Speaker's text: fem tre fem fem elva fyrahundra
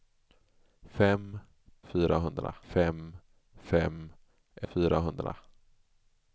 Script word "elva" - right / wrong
wrong